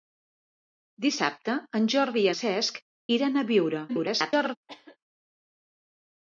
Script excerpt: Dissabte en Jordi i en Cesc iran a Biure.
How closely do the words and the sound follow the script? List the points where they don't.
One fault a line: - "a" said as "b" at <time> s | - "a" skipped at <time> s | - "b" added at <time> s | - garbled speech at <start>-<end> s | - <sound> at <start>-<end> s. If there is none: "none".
- "en" skipped at 2.3 s
- garbled speech at 3.9-4.6 s
- cough at 4.7-5.0 s